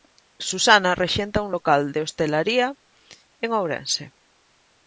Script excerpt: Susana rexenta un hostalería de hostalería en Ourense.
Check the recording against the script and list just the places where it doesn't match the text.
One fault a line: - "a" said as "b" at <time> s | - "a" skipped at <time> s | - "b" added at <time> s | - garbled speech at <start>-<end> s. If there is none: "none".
- "hostalería" said as "local" at 1.5 s